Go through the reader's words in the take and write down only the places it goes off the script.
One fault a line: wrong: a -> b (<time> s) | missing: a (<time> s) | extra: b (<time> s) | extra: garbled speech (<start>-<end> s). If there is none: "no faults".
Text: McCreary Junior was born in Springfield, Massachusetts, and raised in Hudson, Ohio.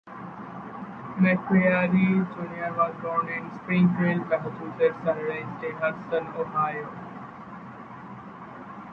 no faults